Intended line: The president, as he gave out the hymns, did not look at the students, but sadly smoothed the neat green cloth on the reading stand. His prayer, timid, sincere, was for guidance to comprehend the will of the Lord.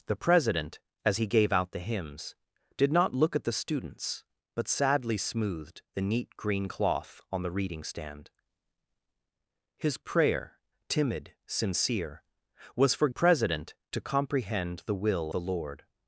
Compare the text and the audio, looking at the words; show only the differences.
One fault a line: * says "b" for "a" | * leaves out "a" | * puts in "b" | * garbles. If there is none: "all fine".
* says "president" for "guidance"
* leaves out "of"